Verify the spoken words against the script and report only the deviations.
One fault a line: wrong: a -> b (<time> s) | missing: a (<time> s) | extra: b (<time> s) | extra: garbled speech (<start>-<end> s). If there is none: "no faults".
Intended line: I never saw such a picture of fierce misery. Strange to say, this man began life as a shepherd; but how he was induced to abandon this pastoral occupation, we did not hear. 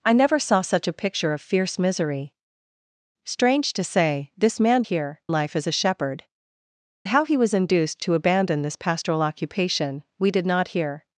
wrong: began -> hear (4.8 s)
missing: but (6.2 s)